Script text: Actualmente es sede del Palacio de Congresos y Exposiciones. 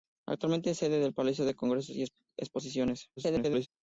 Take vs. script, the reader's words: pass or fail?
fail